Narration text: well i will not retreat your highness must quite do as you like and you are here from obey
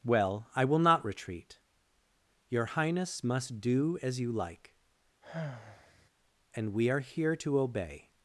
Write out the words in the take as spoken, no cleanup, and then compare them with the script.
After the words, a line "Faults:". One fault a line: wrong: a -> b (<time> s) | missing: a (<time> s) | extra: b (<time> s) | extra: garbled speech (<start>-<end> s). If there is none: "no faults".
well i will not retreat your highness must do as you like and we are here to obey
Faults:
missing: quite (3.6 s)
wrong: you -> we (6.7 s)
wrong: from -> to (7.3 s)